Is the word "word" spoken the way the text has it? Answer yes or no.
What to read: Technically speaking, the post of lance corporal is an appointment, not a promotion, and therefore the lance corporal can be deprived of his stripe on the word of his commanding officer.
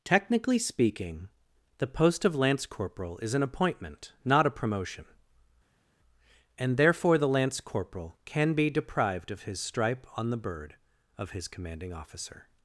no